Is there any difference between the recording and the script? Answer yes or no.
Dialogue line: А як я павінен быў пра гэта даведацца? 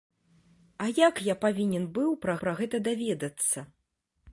yes